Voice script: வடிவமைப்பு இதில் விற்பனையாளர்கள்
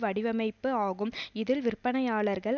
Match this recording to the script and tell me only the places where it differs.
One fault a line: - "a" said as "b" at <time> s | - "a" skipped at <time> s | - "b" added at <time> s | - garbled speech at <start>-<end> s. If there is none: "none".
- "ஆகும்" added at 0.8 s